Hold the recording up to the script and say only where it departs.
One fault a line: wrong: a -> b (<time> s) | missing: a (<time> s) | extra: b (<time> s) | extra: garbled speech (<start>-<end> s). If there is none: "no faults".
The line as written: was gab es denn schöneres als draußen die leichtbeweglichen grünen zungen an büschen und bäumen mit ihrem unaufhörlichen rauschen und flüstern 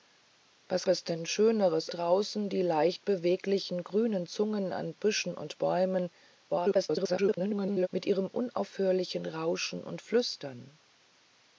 missing: gab (0.9 s)
missing: als (1.9 s)
extra: garbled speech (6.5-7.9 s)